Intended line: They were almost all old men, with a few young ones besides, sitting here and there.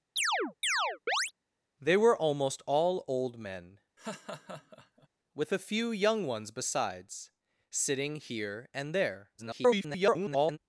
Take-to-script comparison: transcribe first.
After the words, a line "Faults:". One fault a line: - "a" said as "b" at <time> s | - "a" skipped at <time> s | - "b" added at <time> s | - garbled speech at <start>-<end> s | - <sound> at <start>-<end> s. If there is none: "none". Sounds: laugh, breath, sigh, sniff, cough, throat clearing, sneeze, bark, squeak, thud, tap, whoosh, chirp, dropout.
They were almost all old men, with a few young ones besides, sitting here and there. [garbled]
Faults:
- chirp at 0.2-1.3 s
- laugh at 4.0-5.1 s
- garbled speech at 9.4-10.6 s